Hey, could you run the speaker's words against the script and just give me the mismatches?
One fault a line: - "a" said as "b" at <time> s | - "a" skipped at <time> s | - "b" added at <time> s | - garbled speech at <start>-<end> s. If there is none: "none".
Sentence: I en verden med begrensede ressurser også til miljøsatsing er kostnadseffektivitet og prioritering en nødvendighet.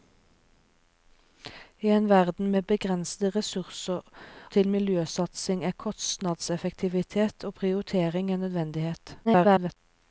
- "også" skipped at 4.0 s
- garbled speech at 9.2-9.8 s